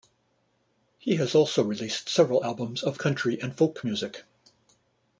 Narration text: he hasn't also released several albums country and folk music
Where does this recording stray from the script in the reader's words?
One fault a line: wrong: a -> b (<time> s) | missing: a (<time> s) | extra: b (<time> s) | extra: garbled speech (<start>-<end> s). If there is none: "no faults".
wrong: hasn't -> has (1.2 s)
extra: of (2.8 s)